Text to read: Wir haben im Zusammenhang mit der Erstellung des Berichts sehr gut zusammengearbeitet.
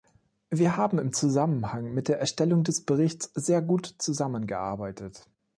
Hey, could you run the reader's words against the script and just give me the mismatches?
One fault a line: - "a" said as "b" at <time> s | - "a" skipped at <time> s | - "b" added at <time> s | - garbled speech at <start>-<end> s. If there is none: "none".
none